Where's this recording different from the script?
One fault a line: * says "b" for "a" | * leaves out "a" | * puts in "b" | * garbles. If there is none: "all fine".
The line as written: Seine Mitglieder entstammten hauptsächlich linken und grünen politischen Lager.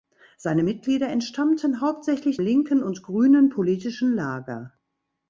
all fine